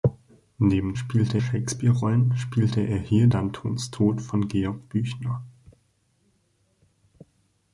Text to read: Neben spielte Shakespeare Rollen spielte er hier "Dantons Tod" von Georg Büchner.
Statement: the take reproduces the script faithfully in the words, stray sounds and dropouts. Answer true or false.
true